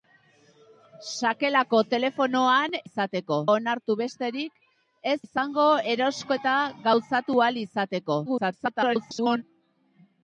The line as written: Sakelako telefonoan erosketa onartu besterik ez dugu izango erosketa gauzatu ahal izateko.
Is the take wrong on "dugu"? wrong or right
wrong